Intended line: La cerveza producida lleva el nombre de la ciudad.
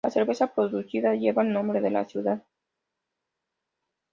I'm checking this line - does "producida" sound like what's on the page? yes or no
yes